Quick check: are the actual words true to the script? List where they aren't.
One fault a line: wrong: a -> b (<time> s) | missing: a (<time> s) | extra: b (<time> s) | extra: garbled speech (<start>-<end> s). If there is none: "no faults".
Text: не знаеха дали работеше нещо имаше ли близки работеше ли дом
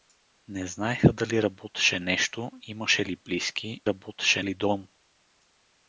no faults